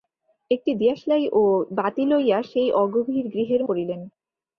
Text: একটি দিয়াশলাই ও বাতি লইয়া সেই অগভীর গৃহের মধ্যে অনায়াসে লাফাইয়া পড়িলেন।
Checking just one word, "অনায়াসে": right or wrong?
wrong